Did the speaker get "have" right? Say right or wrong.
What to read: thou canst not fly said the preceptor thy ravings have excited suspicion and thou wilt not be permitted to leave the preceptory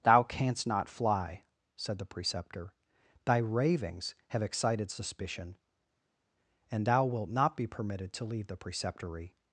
right